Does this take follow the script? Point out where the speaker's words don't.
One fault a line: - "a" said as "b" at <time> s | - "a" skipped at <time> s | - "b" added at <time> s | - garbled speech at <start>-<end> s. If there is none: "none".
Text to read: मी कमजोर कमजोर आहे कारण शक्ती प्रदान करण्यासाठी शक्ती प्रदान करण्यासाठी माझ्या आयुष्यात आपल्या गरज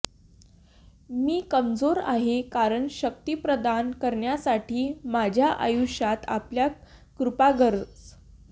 - "कमजोर" skipped at 2.0 s
- "शक्ती प्रदान करण्यासाठी" skipped at 4.9 s
- "कृपा" added at 7.2 s